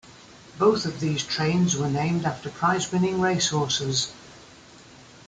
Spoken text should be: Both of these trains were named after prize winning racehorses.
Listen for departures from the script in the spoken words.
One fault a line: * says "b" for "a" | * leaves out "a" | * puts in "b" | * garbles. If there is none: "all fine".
all fine